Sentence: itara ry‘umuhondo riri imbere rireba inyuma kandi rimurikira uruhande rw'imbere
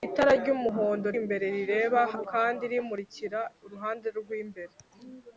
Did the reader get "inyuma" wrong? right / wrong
wrong